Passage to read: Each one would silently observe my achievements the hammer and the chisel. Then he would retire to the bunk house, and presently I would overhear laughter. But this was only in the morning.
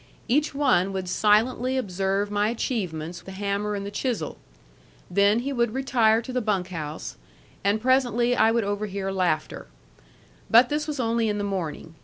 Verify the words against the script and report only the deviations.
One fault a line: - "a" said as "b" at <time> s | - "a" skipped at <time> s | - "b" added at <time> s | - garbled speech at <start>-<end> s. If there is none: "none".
none